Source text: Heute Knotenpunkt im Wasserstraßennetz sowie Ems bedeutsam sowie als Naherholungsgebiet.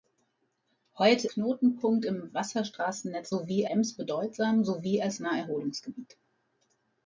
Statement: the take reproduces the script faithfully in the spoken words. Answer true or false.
true